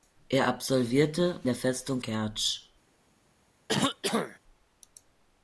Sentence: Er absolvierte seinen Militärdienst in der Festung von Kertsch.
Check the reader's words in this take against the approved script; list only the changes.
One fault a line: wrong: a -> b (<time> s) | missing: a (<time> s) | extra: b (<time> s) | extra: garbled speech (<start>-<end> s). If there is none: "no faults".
missing: seinen Militärdienst in (1.4 s)
missing: von (2.0 s)